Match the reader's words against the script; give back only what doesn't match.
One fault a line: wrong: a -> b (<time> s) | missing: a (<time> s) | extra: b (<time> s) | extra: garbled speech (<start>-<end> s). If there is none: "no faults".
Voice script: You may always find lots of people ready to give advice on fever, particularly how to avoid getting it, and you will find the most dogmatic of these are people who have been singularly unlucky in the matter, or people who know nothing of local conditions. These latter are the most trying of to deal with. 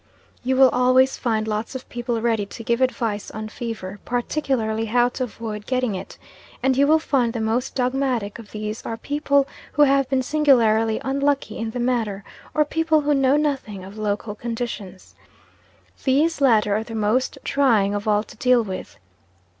wrong: may -> will (0.6 s)
extra: all (18.1 s)